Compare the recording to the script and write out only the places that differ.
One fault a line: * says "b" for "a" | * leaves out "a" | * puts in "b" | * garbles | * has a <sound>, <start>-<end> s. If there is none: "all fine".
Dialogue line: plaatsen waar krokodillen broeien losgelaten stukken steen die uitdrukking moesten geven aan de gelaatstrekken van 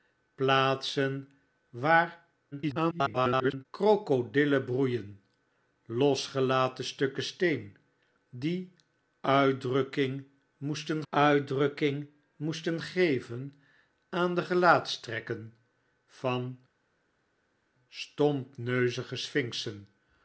* garbles
* puts in "uitdrukking moesten"